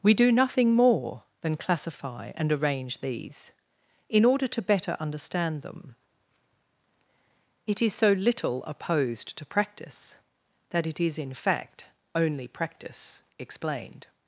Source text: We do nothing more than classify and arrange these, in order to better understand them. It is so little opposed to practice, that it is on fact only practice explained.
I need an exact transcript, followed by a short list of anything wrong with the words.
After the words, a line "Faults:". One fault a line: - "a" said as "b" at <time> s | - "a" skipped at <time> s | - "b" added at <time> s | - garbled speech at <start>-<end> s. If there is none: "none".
We do nothing more than classify and arrange these, in order to better understand them. It is so little opposed to practice, that it is in fact only practice explained.
Faults:
- "on" said as "in" at 11.2 s